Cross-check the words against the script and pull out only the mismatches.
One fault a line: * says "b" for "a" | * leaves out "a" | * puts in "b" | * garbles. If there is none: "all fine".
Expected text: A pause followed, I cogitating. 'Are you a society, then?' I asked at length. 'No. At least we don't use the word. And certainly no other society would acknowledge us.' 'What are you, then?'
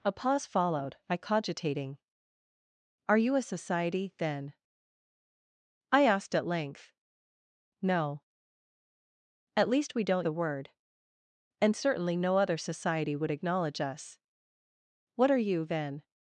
* leaves out "use"